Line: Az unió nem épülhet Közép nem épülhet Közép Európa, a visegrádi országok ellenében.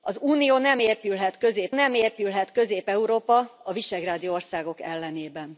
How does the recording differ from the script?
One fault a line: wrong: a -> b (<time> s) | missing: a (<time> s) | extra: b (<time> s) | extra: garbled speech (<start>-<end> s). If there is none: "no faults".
no faults